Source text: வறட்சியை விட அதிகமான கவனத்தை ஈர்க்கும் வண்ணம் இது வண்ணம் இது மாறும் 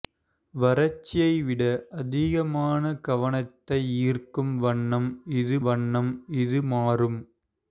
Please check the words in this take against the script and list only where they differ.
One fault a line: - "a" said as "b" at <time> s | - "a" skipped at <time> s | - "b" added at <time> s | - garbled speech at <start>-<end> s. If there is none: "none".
none